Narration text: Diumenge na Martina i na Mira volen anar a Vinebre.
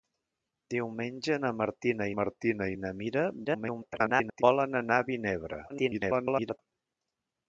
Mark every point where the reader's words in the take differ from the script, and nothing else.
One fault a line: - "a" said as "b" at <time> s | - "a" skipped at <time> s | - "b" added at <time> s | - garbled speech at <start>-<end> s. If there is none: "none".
- "Martina" added at 2.2 s
- garbled speech at 3.4-4.4 s
- garbled speech at 5.7-6.6 s